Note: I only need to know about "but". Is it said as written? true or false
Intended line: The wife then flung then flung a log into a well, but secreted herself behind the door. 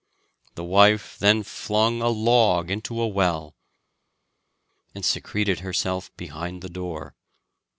false